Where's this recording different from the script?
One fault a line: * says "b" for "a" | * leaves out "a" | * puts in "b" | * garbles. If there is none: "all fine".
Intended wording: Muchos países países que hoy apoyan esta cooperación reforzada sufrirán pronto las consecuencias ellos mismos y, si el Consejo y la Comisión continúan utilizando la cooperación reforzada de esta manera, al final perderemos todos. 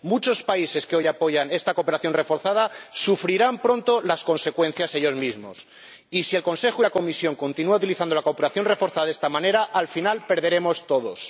* leaves out "países"